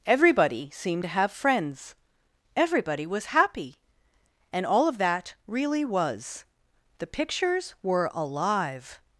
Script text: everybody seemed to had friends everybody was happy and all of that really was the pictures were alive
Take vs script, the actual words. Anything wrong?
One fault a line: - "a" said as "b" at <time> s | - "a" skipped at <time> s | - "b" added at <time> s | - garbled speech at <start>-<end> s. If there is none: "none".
- "had" said as "have" at 1.1 s